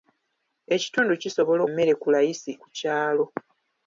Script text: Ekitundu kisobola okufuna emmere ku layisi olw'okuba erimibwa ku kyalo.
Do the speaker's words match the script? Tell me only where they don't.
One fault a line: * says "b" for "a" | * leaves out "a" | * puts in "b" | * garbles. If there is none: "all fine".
* leaves out "okufuna"
* leaves out "olw'okuba erimibwa"